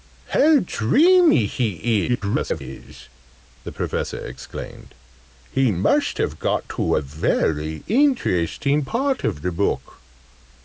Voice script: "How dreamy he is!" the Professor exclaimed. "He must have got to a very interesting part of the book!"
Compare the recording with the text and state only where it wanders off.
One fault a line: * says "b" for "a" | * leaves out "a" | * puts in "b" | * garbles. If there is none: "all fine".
* garbles